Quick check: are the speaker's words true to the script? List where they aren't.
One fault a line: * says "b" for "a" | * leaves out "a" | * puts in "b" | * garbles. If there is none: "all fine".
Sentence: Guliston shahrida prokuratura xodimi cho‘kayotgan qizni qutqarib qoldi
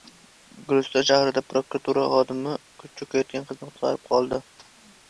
all fine